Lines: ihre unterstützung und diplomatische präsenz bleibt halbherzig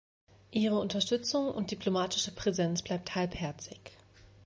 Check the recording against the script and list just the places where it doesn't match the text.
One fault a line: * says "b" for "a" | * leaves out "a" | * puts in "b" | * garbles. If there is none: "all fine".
all fine